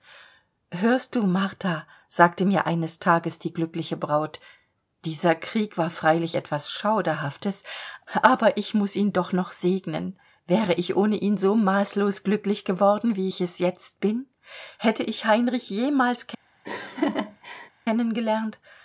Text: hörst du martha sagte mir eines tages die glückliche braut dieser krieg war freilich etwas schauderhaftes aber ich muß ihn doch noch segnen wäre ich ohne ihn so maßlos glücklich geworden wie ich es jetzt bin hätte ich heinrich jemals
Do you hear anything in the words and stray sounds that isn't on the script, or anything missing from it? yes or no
yes